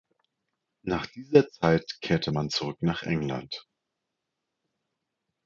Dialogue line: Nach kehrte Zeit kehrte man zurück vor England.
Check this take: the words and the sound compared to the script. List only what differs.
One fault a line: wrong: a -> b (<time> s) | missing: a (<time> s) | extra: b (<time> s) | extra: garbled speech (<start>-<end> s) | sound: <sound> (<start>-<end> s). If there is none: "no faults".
wrong: kehrte -> dieser (1.1 s)
wrong: vor -> nach (2.8 s)